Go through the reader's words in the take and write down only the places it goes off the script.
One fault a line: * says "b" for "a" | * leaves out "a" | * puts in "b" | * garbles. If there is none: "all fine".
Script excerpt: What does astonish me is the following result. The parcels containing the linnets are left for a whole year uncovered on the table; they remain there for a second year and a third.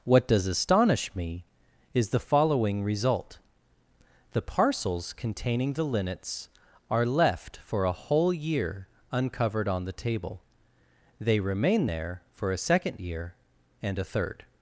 all fine